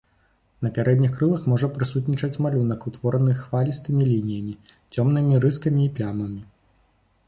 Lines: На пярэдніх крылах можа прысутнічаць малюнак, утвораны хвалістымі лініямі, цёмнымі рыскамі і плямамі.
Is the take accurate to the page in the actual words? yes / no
yes